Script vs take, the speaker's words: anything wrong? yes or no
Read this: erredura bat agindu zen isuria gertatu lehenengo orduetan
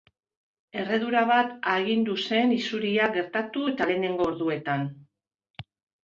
yes